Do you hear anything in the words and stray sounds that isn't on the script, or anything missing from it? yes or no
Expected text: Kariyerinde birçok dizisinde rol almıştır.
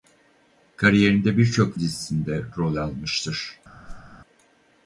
yes